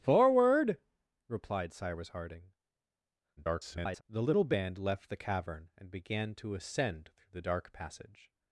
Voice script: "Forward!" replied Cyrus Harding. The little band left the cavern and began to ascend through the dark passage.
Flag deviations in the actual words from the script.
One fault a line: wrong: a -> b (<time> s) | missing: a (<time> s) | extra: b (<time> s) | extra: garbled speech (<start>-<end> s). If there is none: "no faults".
extra: garbled speech (3.4-4.0 s)